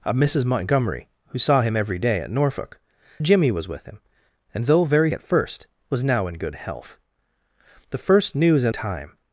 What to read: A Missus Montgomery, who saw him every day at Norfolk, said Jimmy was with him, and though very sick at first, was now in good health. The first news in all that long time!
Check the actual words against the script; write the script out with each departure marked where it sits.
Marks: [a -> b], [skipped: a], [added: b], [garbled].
A Missus Montgomery, who saw him every day at Norfolk, [skipped: said] Jimmy was with him, and though very [skipped: sick] at first, was now in good health. The first news in [skipped: all that long] time!